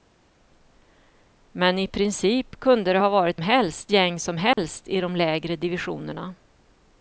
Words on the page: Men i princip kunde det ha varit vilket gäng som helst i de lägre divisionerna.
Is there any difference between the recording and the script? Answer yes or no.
yes